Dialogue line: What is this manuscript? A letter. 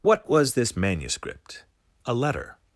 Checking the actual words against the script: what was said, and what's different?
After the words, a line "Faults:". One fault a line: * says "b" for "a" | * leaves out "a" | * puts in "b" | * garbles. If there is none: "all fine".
What was this manuscript? A letter.
Faults:
* says "was" for "is"